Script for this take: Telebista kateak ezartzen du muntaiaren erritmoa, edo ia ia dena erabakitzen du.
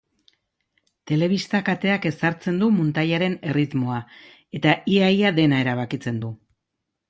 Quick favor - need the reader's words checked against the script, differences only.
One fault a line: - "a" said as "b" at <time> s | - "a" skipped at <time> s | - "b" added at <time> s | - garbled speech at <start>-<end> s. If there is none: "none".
- "edo" said as "eta" at 4.6 s